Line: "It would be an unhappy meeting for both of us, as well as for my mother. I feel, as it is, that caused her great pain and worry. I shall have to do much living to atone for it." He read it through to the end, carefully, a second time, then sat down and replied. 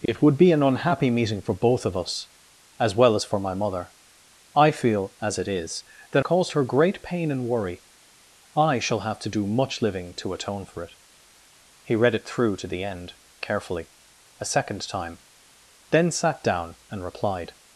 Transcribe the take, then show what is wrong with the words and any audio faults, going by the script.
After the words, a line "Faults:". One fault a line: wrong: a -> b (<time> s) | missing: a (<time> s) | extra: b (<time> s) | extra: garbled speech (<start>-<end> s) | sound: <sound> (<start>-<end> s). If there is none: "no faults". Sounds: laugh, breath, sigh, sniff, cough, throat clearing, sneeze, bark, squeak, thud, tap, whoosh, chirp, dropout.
"It would be an unhappy meeting for both of us, as well as for my mother. I feel, as it is, that caused her great pain and worry. I shall have to do much living to atone for it." He read it through to the end, carefully, a second time, then sat down and replied.
Faults:
sound: dropout (0.1-0.1 s)